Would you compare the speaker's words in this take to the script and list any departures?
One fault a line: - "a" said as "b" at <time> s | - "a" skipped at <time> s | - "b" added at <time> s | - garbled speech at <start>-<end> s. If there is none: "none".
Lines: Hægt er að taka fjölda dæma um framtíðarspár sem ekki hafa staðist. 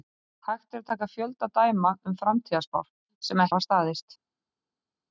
- "ekki" skipped at 3.5 s